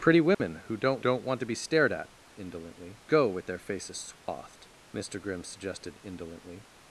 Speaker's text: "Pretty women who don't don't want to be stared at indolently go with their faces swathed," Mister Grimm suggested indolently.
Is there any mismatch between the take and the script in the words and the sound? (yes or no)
yes